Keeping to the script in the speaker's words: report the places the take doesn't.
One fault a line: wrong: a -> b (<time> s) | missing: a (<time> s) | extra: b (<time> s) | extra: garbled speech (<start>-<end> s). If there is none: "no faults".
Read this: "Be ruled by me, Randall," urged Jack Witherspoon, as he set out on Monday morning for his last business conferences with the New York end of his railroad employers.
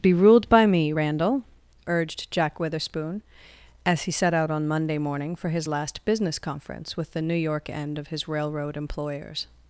wrong: conferences -> conference (6.4 s)